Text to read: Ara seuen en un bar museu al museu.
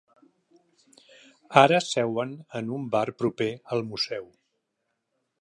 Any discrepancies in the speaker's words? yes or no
yes